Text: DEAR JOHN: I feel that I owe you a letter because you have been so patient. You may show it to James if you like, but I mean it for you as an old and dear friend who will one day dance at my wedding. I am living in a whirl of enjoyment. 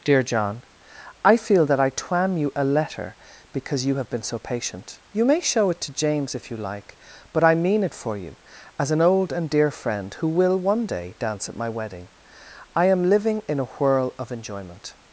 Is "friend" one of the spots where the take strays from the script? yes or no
no